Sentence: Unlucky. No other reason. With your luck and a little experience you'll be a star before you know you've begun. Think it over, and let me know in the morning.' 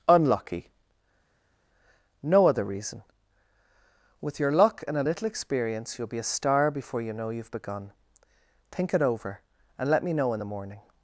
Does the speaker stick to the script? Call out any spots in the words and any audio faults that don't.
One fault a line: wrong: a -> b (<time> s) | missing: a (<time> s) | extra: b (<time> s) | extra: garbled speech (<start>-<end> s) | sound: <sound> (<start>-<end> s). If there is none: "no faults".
no faults